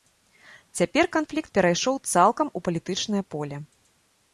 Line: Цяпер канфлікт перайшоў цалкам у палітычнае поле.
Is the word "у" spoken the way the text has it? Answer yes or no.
yes